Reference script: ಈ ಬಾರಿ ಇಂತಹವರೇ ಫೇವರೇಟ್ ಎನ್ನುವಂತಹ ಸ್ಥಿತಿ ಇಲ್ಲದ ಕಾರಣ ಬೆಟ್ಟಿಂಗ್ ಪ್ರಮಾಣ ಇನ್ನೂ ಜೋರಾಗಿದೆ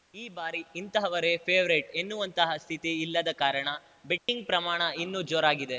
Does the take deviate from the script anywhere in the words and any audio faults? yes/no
yes